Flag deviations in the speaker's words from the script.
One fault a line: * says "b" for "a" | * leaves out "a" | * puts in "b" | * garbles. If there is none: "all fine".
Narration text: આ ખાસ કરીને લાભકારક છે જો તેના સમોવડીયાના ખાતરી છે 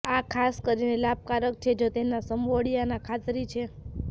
all fine